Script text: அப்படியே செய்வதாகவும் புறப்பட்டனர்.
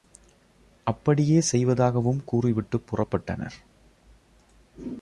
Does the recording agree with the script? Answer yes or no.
no